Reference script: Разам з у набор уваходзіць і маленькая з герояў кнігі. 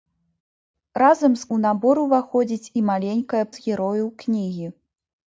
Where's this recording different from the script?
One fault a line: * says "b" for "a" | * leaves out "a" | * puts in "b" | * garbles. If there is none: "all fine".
all fine